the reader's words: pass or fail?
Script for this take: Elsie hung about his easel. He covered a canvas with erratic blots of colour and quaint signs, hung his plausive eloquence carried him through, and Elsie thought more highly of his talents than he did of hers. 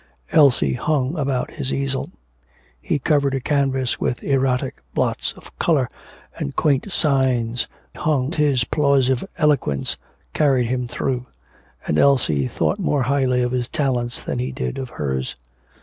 pass